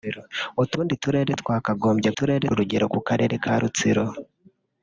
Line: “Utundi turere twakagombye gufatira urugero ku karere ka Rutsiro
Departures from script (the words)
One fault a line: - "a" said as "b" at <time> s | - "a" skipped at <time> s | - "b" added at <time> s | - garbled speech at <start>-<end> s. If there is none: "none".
- "gufatira" said as "turere" at 2.2 s